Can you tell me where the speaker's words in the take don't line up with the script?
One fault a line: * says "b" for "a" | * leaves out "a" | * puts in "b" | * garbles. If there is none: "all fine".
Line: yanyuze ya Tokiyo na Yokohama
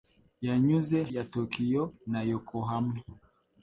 all fine